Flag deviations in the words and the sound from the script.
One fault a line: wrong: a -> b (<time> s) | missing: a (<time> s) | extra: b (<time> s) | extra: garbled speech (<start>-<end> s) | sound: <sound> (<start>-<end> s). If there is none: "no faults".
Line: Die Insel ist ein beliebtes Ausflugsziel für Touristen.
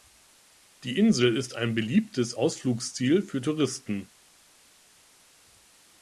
no faults